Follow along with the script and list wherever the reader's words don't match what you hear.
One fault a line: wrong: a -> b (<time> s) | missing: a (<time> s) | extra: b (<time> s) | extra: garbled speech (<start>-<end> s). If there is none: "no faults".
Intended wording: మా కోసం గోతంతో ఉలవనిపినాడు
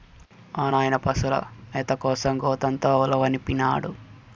extra: నాయన పశుల మేత (0.7 s)